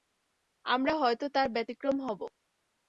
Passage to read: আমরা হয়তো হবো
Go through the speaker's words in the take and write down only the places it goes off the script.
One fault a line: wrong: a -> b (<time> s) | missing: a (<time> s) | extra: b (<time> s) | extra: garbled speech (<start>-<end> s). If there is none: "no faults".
extra: তার ব্যতিক্রম (1.3 s)